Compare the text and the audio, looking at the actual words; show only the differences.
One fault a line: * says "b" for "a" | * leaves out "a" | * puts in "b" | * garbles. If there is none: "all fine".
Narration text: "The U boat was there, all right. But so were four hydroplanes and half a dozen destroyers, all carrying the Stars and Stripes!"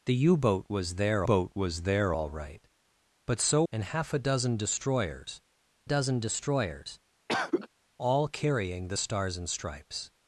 * puts in "boat was there"
* leaves out "were four hydroplanes"
* puts in "dozen destroyers"